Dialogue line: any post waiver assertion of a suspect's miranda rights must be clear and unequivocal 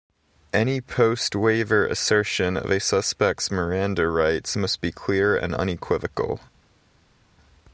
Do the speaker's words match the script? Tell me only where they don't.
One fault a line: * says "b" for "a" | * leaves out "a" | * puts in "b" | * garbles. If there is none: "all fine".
all fine